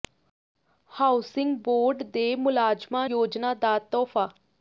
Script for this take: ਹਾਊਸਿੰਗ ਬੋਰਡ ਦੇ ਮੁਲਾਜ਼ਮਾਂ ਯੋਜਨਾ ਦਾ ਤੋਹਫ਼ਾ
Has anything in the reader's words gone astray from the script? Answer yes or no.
no